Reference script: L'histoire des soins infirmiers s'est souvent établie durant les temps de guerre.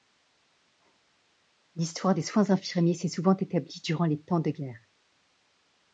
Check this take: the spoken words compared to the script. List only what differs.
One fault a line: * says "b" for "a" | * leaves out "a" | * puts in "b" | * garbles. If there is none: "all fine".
all fine